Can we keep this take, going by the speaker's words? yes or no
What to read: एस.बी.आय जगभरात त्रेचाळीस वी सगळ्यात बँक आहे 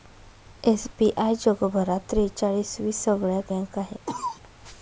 yes